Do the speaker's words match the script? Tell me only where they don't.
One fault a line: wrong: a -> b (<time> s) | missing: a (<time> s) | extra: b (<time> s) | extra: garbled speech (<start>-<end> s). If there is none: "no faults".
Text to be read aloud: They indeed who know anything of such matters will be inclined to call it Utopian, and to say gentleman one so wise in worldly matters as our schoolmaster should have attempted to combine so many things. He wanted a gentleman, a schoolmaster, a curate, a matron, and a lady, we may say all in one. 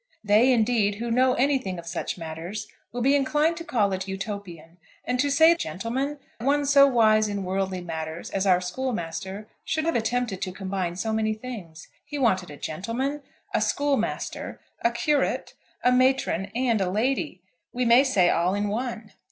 no faults